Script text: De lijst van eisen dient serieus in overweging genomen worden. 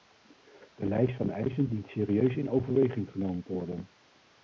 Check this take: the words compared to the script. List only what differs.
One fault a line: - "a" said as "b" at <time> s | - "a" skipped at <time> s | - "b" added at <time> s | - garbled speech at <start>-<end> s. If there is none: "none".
- "te" added at 3.4 s